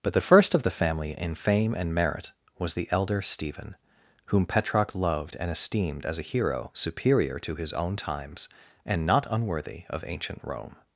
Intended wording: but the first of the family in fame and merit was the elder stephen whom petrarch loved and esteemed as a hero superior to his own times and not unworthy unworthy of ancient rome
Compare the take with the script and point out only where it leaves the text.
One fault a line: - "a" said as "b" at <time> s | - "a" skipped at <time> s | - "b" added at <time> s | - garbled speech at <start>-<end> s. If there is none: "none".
- "unworthy" skipped at 9.8 s